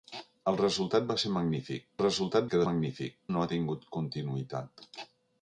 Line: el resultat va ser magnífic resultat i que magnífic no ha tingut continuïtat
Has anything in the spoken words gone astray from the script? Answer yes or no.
no